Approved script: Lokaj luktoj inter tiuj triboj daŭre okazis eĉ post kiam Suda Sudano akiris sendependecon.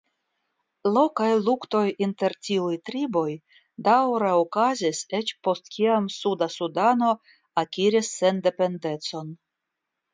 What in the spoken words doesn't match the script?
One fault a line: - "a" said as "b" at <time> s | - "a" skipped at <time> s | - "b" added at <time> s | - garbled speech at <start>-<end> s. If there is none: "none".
none